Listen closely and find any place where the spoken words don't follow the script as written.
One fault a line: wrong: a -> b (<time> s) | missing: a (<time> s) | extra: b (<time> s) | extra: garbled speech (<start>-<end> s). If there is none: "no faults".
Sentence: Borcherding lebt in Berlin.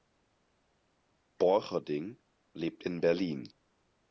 no faults